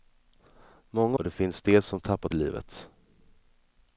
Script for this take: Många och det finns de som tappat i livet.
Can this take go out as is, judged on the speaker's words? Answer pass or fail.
pass